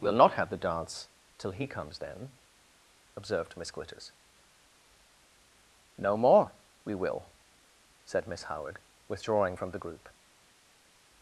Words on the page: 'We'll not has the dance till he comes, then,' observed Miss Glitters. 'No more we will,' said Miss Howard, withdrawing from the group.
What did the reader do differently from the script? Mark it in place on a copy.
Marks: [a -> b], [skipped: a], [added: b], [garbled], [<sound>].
'We'll not [has -> have] the dance till he comes, then,' observed Miss Glitters. 'No more we will,' said Miss Howard, withdrawing from the group.